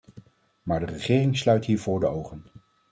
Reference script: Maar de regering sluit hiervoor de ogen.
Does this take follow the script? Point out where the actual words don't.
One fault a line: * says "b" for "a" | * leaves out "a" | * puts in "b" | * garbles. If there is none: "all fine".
all fine